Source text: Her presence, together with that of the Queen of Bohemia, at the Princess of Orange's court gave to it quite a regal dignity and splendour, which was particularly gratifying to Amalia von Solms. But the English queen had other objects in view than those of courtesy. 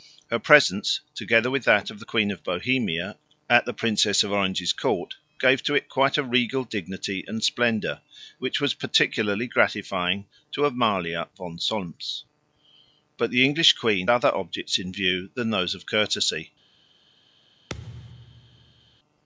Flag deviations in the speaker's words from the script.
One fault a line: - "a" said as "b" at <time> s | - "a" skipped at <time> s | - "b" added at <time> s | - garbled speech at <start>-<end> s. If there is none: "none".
- "had" skipped at 14.1 s